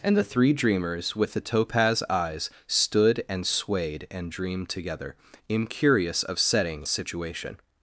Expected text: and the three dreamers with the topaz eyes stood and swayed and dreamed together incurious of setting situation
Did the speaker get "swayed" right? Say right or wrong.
right